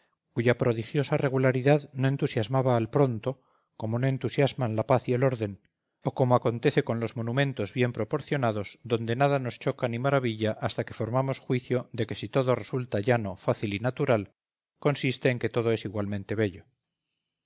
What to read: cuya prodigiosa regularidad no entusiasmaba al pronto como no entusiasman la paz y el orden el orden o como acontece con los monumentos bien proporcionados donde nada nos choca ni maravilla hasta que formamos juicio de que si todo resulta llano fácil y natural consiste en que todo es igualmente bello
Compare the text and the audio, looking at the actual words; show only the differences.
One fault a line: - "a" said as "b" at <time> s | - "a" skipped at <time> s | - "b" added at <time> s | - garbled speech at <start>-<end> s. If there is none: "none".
- "el orden" skipped at 5.6 s